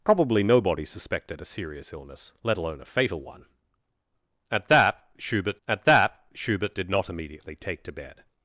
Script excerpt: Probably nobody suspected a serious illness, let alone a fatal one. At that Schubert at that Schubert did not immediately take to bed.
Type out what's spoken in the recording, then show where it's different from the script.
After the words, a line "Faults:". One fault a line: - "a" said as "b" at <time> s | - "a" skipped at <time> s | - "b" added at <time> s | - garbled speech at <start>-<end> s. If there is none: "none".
Probably nobody suspected a serious illness, let alone a fatal one. At that Schubert at that Schubert did not immediately take to bed.
Faults:
none